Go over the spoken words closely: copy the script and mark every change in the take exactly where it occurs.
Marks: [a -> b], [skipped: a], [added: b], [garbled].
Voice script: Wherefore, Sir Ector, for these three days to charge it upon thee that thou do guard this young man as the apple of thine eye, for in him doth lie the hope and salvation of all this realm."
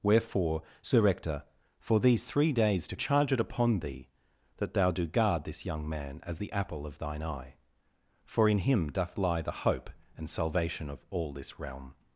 Wherefore, Sir Ector, for these three days to charge it upon thee that thou do guard this young man as the apple of thine eye, for in him doth lie the hope and salvation of all this realm."